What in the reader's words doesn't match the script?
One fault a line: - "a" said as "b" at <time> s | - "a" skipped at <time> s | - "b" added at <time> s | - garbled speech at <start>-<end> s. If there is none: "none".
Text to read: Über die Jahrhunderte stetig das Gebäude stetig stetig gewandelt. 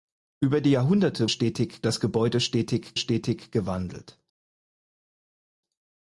none